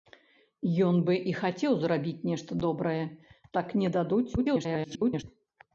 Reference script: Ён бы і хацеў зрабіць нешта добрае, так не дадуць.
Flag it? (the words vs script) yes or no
yes